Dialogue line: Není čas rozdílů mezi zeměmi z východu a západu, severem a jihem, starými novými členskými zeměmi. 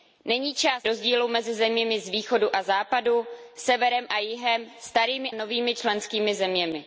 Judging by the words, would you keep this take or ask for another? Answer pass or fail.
pass